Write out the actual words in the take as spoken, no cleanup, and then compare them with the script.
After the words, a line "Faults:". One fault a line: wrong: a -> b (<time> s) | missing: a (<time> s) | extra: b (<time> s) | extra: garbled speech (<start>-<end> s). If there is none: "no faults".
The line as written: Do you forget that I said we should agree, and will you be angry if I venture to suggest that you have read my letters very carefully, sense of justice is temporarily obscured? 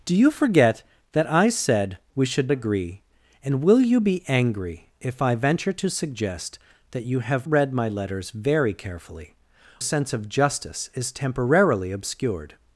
Do you forget that I said we should agree, and will you be angry if I venture to suggest that you have read my letters very carefully, sense of justice is temporarily obscured?
Faults:
no faults